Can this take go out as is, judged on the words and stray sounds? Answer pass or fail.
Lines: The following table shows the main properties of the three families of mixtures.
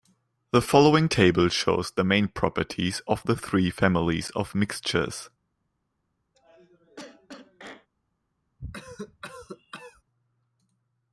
fail